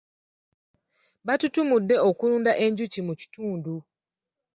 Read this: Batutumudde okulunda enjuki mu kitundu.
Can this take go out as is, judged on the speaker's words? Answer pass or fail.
pass